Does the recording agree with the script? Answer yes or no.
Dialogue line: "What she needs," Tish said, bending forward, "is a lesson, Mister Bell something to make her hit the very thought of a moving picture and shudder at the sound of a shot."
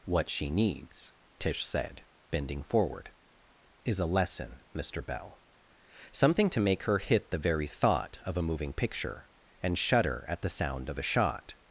yes